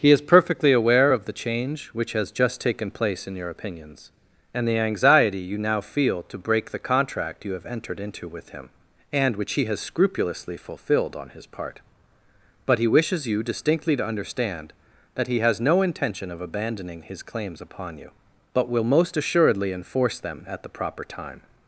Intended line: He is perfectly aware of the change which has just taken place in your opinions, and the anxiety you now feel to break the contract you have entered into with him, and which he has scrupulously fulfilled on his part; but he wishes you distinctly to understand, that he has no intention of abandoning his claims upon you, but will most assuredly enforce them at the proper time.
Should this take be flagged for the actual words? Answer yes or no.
no